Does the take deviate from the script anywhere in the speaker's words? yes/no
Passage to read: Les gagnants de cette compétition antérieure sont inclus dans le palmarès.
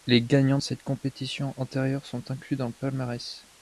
no